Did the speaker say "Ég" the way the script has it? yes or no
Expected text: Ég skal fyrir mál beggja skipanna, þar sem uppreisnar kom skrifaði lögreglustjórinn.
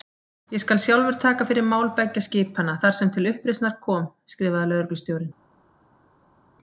yes